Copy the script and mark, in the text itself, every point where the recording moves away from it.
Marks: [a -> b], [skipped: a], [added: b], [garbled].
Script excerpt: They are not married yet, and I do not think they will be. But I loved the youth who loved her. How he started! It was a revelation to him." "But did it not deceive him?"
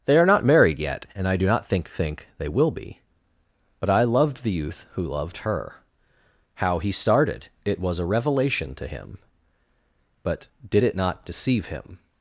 They are not married yet, and I do not think [added: think] they will be. But I loved the youth who loved her. How he started! It was a revelation to him." "But did it not deceive him?"